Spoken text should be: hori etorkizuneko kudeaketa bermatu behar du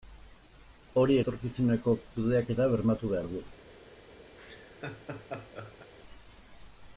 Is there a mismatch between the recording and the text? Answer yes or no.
no